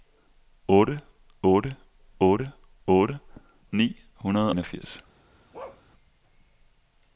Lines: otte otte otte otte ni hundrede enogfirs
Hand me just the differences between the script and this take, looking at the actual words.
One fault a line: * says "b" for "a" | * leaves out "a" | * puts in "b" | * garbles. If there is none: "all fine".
all fine